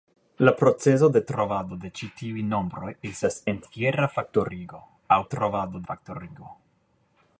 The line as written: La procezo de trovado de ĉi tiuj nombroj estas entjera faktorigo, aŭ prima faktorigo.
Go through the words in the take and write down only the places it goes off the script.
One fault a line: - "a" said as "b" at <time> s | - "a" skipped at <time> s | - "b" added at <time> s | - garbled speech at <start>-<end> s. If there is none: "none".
- "prima" said as "trovado" at 5.3 s